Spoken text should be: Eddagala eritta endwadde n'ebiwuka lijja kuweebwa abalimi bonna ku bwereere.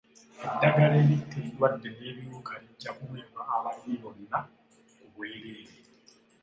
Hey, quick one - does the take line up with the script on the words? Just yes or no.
yes